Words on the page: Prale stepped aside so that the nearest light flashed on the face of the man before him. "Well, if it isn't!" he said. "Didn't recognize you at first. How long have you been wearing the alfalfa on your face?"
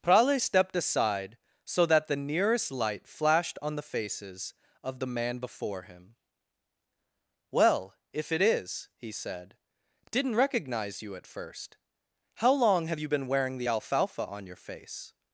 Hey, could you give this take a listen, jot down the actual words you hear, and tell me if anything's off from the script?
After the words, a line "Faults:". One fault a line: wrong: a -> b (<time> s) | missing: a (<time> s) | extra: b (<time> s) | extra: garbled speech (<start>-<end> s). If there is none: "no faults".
Prale stepped aside so that the nearest light flashed on the faces of the man before him. "Well, if it is!" he said. "Didn't recognize you at first. How long have you been wearing the alfalfa on your face?"
Faults:
wrong: face -> faces (3.8 s)
wrong: isn't -> is (8.4 s)